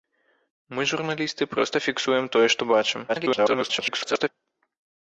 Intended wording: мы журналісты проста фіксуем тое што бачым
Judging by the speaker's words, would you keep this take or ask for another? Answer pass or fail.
fail